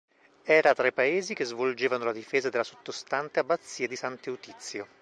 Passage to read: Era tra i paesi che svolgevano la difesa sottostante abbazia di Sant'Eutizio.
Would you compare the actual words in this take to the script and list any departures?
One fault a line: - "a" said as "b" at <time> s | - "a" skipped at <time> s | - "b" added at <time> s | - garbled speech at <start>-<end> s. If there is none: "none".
- "della" added at 2.5 s